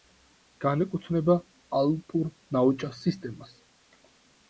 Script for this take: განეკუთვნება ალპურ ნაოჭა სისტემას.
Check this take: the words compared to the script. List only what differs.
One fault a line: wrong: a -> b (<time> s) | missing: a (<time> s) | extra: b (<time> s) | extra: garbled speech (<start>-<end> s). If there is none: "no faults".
no faults